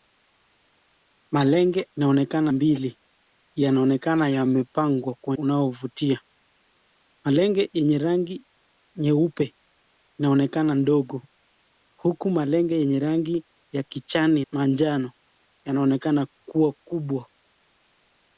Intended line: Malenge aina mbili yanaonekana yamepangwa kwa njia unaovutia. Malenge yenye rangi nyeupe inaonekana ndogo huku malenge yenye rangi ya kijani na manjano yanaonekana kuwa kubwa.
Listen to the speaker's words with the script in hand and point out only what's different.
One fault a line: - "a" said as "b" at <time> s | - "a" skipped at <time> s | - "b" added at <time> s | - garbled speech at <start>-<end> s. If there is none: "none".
- "aina" said as "inaonekana" at 2.0 s
- "njia" skipped at 5.4 s
- "na" skipped at 14.4 s